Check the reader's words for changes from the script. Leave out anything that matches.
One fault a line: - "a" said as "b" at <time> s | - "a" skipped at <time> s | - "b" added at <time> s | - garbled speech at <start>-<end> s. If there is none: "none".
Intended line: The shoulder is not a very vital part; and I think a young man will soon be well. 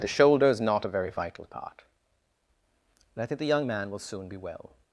- "a" said as "the" at 3.4 s